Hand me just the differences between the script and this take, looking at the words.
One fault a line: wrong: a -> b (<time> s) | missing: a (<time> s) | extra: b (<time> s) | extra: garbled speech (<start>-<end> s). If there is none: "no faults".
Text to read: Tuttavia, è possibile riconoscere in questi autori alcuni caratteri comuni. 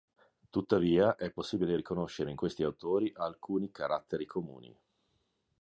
no faults